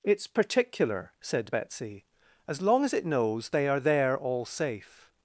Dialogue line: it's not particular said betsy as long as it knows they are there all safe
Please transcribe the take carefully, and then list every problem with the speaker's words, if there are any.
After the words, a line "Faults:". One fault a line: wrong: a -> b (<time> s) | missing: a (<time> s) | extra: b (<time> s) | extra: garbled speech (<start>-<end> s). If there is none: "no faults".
it's particular said betsy as long as it knows they are there all safe
Faults:
missing: not (0.3 s)